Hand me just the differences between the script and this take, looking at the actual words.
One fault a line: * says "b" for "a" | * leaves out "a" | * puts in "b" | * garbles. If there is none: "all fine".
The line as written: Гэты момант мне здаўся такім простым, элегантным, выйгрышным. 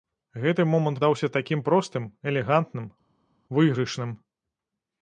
* leaves out "мне"